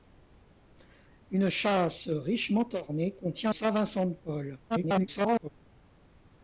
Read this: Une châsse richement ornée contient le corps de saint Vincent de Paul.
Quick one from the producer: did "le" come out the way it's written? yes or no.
no